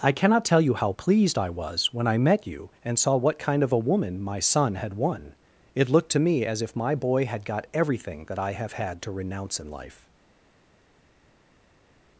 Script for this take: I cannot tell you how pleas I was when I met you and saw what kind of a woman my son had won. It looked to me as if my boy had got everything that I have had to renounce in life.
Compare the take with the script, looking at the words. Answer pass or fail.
fail